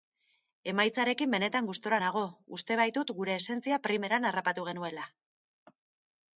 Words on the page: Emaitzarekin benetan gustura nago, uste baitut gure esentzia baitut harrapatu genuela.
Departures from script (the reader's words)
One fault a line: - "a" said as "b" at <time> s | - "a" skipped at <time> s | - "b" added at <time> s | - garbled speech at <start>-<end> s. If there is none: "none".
- "baitut" said as "primeran" at 3.9 s